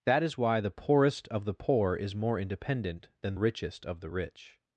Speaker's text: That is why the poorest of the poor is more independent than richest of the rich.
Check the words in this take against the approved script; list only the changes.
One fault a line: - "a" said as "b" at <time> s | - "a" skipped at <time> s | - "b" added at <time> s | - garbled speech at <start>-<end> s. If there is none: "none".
none